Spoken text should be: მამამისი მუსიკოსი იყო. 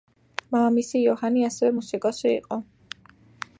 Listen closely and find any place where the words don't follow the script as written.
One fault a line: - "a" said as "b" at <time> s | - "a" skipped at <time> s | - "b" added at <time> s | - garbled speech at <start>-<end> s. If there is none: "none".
- "იოჰანი ასევე" added at 1.0 s